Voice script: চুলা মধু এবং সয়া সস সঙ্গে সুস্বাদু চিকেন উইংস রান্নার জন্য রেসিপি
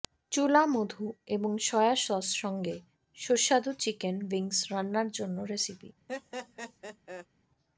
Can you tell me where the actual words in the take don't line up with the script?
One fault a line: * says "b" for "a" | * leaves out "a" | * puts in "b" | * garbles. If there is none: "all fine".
all fine